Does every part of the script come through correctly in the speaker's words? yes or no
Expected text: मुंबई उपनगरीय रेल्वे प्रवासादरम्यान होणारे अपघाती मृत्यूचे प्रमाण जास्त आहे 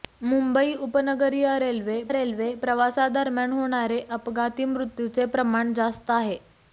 no